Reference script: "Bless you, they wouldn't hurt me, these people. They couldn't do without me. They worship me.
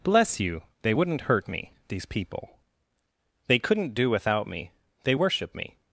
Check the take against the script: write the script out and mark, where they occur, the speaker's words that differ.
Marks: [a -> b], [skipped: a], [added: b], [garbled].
"Bless you, they wouldn't hurt me, these people. They couldn't do without me. They worship me.